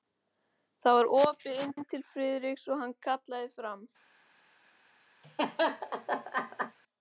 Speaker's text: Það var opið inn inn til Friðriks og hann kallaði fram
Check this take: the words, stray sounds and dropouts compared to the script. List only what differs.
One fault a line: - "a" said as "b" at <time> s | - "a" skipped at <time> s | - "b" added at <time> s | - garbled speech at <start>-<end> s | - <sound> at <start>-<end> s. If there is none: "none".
- laugh at 5.2-6.8 s